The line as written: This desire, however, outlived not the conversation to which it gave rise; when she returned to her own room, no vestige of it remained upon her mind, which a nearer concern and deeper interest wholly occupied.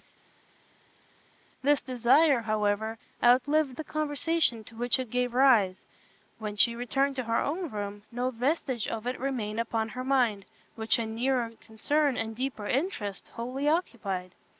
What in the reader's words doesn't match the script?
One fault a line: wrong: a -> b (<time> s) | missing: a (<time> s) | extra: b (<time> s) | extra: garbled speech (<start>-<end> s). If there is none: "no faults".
missing: not (3.8 s)